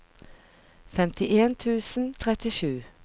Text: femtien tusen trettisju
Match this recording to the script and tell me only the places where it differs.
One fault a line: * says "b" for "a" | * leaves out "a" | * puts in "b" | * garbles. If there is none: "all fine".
all fine